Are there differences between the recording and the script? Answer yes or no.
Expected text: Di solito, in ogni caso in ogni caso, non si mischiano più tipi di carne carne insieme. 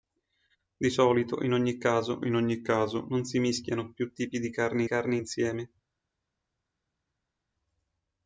no